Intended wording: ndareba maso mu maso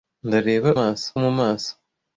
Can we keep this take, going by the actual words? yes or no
yes